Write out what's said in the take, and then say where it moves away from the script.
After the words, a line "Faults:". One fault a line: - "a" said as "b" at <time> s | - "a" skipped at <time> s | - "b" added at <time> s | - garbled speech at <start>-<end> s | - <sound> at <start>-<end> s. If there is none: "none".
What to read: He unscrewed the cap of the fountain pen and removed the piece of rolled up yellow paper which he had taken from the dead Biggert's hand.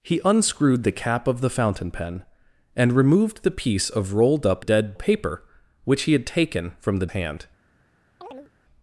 He unscrewed the cap of the fountain pen and removed the piece of rolled up dead paper which he had taken from the hand.
Faults:
- "yellow" said as "dead" at 4.6 s
- "dead Biggert's" skipped at 7.1 s
- chirp at 8.2-8.5 s